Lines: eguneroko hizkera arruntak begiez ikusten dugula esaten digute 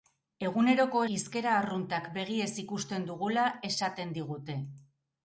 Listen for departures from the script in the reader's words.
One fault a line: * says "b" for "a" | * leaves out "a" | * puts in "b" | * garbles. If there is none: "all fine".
all fine